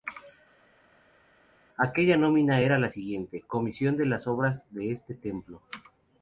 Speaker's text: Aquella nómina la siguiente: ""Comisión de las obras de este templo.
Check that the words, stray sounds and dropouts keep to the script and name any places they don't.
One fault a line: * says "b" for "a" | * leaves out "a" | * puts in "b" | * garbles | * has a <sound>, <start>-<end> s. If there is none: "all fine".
* puts in "era"